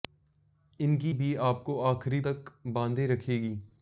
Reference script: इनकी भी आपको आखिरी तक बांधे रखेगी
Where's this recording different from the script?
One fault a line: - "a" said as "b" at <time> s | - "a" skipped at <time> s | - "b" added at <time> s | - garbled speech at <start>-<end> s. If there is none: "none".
none